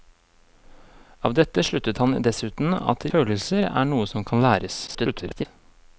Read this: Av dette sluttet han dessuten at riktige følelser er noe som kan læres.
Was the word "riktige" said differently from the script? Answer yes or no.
yes